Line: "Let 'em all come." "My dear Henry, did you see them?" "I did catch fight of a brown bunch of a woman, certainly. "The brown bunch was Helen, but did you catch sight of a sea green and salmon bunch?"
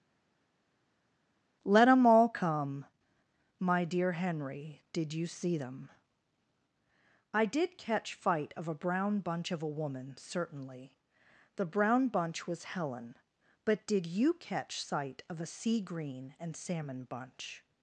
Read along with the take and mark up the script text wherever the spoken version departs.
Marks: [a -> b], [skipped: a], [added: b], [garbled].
"Let 'em all come." "My dear Henry, did you see them?" "I did catch fight of a brown bunch of a woman, certainly. "The brown bunch was Helen, but did you catch sight of a sea green and salmon bunch?"